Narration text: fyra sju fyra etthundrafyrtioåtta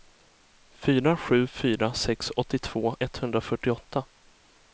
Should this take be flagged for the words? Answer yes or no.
yes